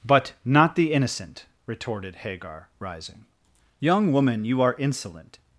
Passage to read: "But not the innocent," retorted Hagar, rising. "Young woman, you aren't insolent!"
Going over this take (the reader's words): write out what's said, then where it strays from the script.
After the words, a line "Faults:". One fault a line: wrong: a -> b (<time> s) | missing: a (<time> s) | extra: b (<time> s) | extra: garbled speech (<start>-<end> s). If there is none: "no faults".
"But not the innocent," retorted Hagar, rising. "Young woman, you are insolent!"
Faults:
wrong: aren't -> are (4.6 s)